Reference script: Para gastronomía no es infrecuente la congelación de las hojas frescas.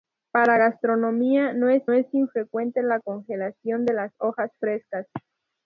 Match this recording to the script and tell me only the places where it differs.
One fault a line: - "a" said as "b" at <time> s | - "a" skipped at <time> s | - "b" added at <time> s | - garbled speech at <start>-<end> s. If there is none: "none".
- "es" added at 1.9 s